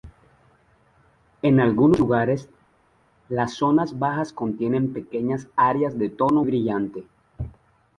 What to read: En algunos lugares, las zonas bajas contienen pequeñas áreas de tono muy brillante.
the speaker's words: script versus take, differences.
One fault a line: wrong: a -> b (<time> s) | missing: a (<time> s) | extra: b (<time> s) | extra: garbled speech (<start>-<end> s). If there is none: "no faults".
missing: muy (6.5 s)